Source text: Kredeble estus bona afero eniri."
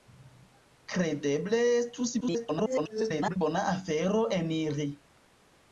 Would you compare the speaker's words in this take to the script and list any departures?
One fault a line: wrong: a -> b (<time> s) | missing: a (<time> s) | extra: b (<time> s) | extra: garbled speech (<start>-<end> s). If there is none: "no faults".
extra: garbled speech (2.2-3.4 s)